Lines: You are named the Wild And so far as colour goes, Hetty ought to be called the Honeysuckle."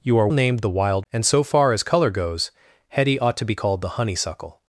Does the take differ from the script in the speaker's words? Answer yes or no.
no